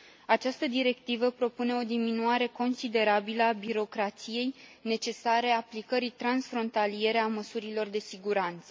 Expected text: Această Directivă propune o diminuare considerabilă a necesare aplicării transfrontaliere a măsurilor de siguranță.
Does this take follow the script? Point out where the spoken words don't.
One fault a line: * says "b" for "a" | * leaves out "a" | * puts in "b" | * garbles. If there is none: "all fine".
* puts in "birocrației"